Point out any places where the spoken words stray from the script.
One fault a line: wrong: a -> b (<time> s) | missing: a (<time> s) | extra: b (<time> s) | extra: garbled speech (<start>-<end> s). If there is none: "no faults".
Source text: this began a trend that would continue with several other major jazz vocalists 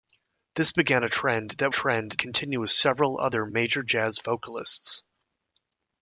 wrong: would -> trend (1.7 s)